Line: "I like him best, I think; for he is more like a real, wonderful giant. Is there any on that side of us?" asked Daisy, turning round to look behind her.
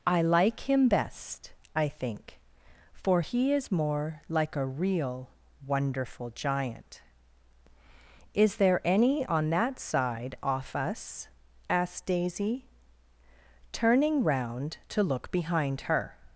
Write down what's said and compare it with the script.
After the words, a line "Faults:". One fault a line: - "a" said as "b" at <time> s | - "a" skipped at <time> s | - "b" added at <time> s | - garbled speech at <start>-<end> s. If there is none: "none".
"I like him best, I think; for he is more like a real, wonderful giant. Is there any on that side off us?" asked Daisy, turning round to look behind her.
Faults:
- "of" said as "off" at 10.4 s